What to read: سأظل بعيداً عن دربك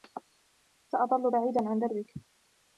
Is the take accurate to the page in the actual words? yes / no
yes